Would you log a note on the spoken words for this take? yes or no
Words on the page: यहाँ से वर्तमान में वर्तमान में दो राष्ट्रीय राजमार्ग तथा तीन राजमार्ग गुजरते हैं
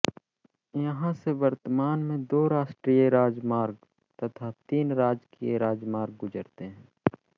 yes